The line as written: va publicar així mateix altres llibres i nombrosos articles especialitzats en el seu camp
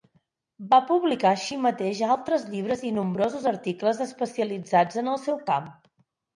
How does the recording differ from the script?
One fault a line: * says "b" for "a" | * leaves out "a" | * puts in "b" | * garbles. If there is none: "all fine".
all fine